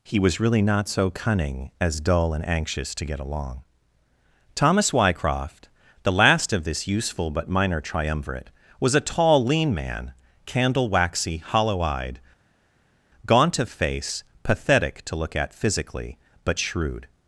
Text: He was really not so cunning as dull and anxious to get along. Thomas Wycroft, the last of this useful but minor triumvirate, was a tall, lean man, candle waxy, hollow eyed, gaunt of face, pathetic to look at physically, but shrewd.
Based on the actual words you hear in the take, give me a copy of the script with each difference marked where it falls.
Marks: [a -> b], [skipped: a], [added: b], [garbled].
He was really not so cunning as dull and anxious to get along. Thomas Wycroft, the last of this useful but minor triumvirate, was a tall, lean man, candle waxy, hollow eyed, gaunt of face, pathetic to look at physically, but shrewd.